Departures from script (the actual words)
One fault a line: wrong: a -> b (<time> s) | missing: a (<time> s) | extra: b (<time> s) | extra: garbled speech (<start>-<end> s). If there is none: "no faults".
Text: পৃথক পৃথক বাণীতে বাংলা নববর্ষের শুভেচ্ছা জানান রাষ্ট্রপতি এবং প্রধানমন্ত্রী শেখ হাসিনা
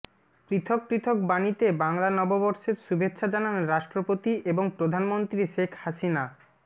no faults